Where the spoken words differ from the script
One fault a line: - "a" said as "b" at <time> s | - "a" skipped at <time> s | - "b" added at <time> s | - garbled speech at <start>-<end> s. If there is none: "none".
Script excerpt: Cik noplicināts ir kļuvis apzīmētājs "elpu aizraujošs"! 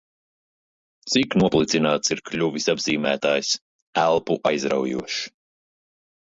none